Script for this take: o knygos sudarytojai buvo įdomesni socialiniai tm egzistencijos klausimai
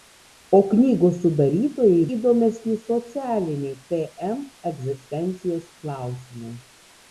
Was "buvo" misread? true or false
true